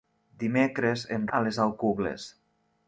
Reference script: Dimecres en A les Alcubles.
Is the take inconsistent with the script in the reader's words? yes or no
no